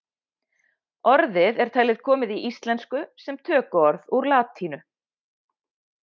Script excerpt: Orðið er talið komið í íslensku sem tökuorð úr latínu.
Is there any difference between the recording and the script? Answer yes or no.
no